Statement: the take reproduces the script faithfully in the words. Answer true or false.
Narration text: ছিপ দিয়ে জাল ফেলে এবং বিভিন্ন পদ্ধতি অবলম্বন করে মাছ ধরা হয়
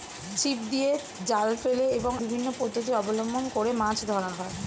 true